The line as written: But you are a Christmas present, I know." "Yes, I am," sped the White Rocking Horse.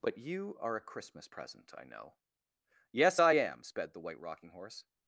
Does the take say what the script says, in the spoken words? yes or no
yes